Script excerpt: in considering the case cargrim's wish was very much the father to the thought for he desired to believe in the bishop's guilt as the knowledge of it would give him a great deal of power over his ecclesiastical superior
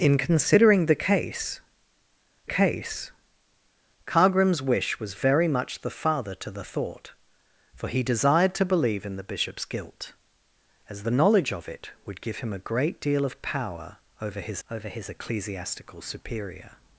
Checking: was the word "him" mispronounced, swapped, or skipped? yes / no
no